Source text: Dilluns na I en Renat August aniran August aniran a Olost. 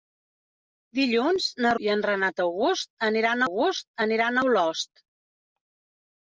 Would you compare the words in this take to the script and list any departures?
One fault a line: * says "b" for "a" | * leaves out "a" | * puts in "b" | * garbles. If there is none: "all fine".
all fine